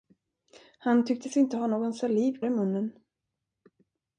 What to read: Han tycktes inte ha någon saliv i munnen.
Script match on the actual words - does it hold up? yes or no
yes